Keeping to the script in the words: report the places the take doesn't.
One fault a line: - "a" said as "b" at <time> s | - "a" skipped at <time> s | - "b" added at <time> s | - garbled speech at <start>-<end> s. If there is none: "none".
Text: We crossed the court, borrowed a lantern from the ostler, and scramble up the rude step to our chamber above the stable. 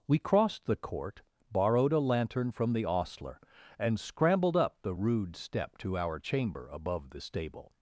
- "scramble" said as "scrambled" at 4.0 s